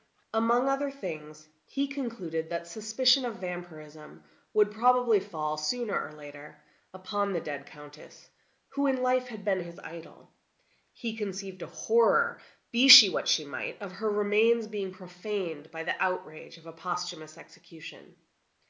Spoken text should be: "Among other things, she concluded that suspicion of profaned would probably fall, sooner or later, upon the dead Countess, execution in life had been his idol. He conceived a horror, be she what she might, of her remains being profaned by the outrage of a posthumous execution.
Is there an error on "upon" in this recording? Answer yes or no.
no